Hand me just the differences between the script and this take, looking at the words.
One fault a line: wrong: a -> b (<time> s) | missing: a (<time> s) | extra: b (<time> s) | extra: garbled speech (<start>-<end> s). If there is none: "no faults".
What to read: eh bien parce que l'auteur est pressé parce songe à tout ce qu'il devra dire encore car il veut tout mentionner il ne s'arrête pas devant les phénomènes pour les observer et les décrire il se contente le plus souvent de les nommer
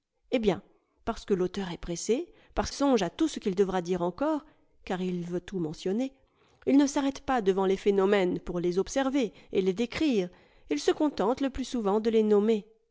no faults